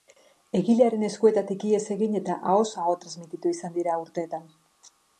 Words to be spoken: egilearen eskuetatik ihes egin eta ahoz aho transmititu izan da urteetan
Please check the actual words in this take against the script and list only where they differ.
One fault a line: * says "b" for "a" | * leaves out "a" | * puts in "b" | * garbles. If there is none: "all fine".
* says "dira" for "da"